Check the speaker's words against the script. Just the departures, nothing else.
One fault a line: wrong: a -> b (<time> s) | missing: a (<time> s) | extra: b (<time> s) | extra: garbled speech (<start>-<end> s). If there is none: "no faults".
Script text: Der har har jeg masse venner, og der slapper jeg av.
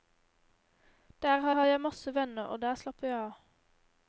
no faults